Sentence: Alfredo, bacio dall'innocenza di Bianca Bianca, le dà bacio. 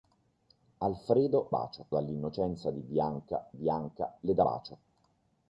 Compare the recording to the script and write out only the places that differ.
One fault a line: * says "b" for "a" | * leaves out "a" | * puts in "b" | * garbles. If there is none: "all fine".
all fine